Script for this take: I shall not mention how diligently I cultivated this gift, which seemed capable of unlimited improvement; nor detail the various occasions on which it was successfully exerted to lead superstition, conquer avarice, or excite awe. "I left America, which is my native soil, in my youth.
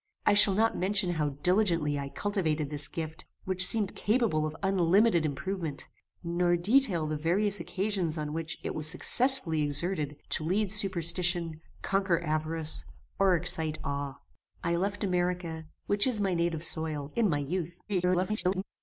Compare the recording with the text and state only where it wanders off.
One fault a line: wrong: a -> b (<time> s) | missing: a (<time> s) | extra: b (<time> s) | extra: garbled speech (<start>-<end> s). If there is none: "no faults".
extra: garbled speech (17.9-18.6 s)